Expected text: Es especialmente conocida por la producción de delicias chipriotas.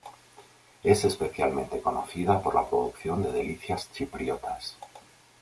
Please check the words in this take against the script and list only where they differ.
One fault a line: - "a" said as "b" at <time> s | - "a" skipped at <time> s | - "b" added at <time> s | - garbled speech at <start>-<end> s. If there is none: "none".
none